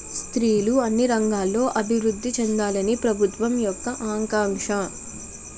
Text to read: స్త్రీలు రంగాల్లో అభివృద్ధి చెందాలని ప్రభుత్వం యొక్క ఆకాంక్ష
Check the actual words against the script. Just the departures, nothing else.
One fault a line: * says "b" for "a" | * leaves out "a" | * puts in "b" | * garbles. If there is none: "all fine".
* puts in "అన్ని"